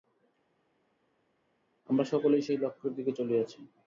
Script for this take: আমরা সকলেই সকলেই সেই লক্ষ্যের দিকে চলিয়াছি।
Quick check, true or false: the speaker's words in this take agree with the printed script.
false